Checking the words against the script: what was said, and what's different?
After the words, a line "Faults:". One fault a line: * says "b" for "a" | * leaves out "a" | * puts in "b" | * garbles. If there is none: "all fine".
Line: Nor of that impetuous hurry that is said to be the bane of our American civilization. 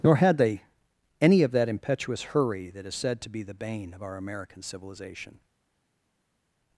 Nor had they any of that impetuous hurry that is said to be the bane of our American civilization.
Faults:
* puts in "had they any"